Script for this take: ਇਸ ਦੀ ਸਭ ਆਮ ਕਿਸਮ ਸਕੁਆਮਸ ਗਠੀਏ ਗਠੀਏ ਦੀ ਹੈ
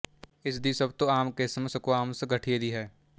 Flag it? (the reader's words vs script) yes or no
yes